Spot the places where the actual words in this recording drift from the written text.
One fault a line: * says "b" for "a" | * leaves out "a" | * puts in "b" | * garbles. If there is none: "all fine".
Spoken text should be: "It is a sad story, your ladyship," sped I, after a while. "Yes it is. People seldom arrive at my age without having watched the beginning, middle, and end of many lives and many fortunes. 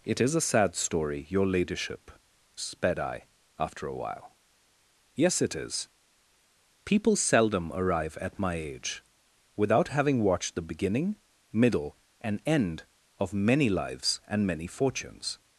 all fine